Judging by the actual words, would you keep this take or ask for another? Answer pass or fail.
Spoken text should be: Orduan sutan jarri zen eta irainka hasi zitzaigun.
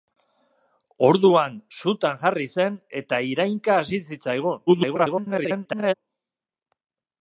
fail